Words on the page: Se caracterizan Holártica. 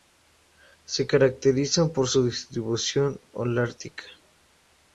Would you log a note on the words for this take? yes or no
yes